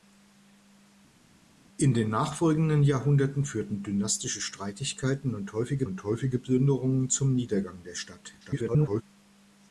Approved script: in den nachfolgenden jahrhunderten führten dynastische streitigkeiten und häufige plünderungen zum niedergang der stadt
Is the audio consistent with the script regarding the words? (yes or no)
no